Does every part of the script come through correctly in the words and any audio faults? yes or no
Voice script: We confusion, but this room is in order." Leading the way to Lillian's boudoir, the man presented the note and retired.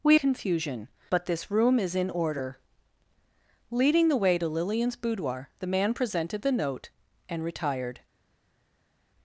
yes